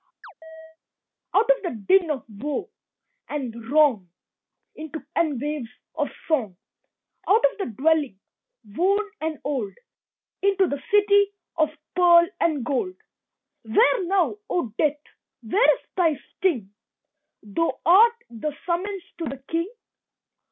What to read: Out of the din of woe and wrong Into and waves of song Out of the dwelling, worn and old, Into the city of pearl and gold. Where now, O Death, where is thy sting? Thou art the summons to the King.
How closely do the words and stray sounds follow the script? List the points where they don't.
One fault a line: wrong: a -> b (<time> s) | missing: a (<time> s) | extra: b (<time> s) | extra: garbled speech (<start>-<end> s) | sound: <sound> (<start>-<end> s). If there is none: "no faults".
sound: chirp (0.2-0.8 s)